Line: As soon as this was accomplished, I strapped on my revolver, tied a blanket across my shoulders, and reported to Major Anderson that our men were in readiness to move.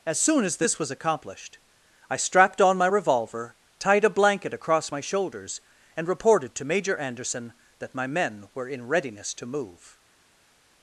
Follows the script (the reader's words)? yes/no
no